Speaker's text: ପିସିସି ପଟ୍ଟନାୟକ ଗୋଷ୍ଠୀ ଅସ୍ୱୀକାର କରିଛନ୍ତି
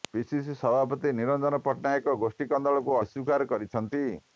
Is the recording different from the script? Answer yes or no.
yes